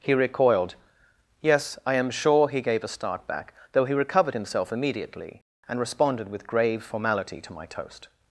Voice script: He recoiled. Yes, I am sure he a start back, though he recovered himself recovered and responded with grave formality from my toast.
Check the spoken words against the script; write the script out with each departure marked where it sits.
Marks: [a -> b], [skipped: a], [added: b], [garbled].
He recoiled. Yes, I am sure he [added: gave] a start back, though he recovered himself [recovered -> immediately] and responded with grave formality [from -> to] my toast.